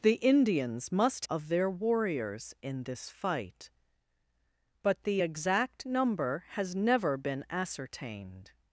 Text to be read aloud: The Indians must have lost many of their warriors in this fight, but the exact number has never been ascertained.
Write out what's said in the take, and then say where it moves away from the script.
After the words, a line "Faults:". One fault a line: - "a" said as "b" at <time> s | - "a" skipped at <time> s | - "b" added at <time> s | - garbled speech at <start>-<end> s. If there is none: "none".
The Indians must of their warriors in this fight, but the exact number has never been ascertained.
Faults:
- "have lost many" skipped at 1.2 s